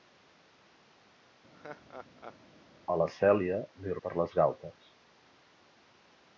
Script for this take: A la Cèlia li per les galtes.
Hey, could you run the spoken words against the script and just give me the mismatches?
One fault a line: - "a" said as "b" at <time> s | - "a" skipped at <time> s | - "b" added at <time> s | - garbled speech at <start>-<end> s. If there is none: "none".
none